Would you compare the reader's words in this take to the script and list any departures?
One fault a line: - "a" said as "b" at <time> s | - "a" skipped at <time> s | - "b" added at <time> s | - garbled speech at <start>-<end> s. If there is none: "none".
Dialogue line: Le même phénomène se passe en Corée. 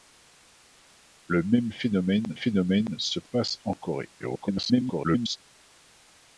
- "phénomène" added at 2.3 s
- garbled speech at 4.2-5.4 s